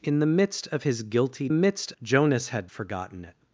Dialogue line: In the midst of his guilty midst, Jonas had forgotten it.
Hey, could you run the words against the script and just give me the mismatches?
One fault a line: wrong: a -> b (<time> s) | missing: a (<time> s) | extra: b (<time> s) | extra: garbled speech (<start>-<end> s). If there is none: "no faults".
no faults